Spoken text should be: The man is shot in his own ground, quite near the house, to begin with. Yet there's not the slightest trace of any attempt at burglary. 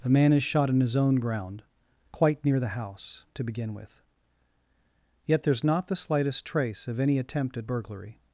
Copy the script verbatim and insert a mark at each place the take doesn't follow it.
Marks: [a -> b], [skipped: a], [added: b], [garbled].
The man is shot in his own ground, quite near the house, to begin with. Yet there's not the slightest trace of any attempt at burglary.